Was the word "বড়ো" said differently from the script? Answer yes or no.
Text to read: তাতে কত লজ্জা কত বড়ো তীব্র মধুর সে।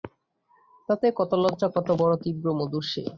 no